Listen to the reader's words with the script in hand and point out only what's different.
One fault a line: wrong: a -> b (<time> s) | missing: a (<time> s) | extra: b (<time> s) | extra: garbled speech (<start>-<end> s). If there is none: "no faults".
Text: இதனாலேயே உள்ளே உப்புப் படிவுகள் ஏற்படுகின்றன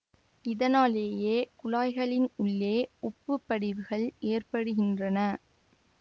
extra: குழாய்களின் (1.6 s)